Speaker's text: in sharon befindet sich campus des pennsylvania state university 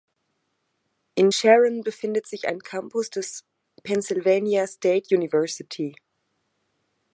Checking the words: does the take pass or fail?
fail